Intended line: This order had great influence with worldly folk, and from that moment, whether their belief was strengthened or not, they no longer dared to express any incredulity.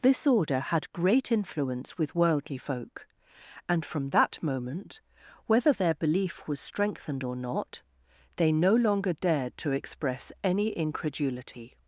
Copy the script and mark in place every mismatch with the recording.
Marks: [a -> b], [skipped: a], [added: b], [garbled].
This order had great influence with worldly folk, and from that moment, whether their belief was strengthened or not, they no longer dared to express any incredulity.